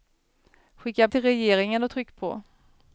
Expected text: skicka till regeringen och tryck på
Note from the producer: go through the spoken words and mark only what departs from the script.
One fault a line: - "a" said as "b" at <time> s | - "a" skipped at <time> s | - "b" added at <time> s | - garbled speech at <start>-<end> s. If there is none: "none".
none